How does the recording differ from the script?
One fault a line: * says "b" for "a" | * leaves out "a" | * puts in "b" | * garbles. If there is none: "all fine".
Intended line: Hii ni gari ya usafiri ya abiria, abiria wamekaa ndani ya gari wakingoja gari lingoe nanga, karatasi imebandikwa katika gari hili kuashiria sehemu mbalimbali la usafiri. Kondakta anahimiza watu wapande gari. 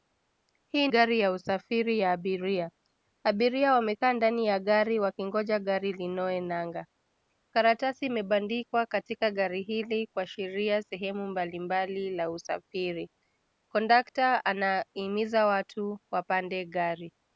* leaves out "ni"